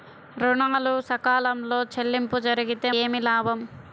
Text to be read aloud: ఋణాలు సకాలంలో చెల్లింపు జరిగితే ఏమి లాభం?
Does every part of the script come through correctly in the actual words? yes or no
yes